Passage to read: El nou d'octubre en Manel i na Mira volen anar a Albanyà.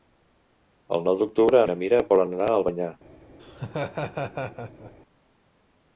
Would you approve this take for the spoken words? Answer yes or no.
no